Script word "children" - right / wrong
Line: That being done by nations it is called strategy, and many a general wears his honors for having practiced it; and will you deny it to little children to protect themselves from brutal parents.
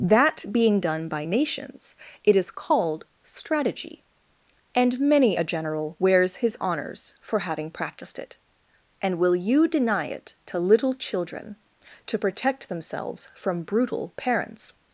right